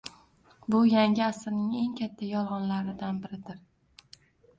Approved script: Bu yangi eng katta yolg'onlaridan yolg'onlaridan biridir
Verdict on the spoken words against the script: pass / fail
fail